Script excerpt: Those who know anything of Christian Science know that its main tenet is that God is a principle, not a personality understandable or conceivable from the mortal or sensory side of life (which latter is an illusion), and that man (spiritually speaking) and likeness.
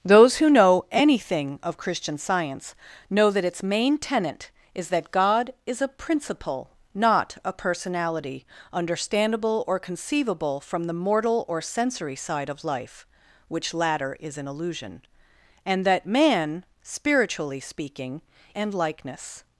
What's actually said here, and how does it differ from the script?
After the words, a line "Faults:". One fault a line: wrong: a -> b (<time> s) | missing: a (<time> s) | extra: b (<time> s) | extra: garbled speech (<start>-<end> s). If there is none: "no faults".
Those who know anything of Christian Science know that its main tenet is that God is a principle, not a personality understandable or conceivable from the mortal or sensory side of life (which latter is an illusion), and that man (spiritually speaking) and likeness.
Faults:
no faults